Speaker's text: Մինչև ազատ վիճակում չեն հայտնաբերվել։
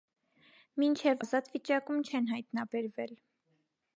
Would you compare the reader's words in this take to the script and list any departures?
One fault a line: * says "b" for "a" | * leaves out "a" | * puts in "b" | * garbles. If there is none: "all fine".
all fine